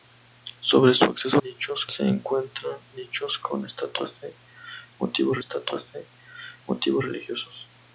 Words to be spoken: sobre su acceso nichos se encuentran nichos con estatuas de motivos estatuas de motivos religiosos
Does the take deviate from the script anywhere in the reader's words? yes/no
no